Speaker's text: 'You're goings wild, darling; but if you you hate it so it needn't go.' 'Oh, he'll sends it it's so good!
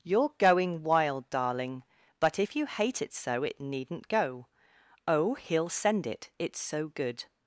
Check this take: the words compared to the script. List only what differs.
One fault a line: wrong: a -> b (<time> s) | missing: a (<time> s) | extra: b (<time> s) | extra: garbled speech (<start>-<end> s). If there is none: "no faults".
wrong: goings -> going (0.4 s)
missing: you (2.7 s)
wrong: sends -> send (5.7 s)